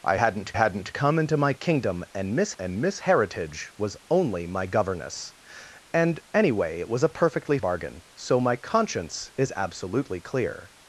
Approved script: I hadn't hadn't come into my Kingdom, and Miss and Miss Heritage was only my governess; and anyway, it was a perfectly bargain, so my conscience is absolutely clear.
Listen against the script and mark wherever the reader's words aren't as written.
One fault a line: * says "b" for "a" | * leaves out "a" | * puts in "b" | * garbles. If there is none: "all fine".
all fine